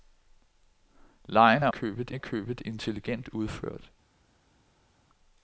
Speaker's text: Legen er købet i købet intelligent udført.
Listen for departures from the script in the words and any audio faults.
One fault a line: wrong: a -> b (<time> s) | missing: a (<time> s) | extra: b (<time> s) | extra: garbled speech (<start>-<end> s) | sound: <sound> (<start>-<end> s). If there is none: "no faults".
no faults